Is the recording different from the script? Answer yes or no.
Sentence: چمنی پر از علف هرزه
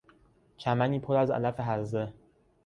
no